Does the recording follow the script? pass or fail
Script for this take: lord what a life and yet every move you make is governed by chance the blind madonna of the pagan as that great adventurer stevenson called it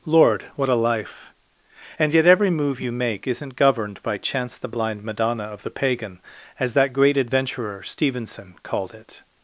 fail